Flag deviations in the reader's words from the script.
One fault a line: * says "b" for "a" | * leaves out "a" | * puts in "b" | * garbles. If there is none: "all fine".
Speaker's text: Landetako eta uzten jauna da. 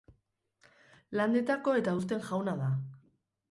all fine